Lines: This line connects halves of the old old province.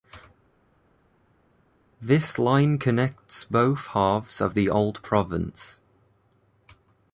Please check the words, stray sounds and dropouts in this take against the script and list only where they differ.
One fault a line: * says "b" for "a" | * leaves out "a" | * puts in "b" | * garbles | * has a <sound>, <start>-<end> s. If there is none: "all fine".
* puts in "both"
* leaves out "old"